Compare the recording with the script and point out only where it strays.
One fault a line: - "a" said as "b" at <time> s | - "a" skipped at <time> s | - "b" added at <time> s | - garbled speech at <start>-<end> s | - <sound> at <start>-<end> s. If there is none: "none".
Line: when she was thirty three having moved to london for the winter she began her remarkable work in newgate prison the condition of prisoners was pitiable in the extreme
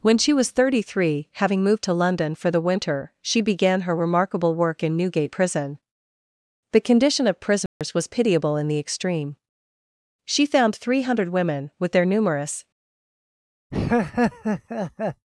- dropout at 7.7-7.8 s
- "she found three hundred women with their numerous" added at 10.2 s
- laugh at 13.7-15.3 s